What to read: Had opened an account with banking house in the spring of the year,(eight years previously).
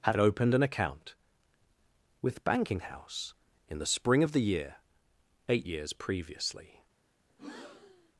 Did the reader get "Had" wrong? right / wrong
right